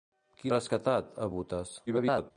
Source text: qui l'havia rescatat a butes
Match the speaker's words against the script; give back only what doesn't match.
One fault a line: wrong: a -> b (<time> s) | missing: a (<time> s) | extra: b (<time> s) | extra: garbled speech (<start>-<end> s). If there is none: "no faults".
missing: l'havia (0.5 s)
extra: garbled speech (1.9-2.3 s)